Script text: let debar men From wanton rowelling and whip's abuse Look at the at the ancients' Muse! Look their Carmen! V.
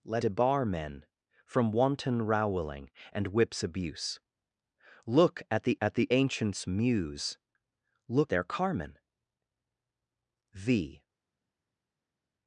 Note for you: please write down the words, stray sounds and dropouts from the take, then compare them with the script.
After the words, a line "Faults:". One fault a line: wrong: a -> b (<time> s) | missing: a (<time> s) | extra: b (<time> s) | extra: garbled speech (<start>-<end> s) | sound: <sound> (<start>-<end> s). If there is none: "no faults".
let debar men From wanton rowelling and whip's abuse Look at the at the ancients' Muse! Look their Carmen! V.
Faults:
no faults